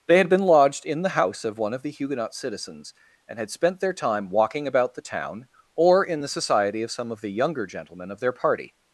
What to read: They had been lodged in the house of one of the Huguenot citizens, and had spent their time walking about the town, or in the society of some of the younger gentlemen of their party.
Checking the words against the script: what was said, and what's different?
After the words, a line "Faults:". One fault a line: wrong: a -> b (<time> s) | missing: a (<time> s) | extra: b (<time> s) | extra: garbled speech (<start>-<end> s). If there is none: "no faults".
They had been lodged in the house of one of the Huguenot citizens, and had spent their time walking about the town, or in the society of some of the younger gentlemen of their party.
Faults:
no faults